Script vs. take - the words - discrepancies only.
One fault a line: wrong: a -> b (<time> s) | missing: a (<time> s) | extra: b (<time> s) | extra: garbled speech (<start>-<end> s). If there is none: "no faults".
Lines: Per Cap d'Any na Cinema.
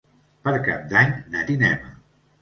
no faults